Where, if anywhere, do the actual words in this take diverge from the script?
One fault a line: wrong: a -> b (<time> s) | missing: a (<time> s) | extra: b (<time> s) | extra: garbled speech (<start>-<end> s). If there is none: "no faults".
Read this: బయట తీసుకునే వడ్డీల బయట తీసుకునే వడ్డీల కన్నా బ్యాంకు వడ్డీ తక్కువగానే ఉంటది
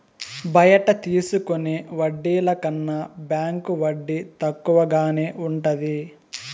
missing: బయట తీసుకునే వడ్డీల (2.5 s)